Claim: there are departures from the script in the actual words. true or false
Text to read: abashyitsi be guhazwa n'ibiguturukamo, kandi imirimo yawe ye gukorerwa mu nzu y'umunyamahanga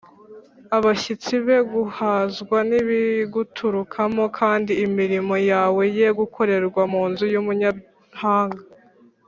false